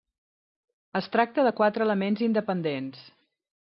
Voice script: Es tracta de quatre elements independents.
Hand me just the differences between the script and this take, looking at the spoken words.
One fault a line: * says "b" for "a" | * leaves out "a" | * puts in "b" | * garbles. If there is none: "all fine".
all fine